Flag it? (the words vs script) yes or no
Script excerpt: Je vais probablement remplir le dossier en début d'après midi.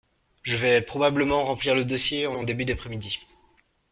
yes